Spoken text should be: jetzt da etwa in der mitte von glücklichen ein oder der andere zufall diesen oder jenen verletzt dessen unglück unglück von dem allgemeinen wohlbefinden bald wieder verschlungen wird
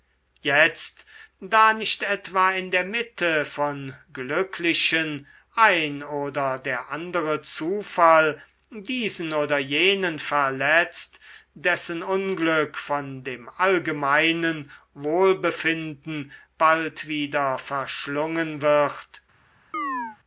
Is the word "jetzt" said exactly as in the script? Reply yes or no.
yes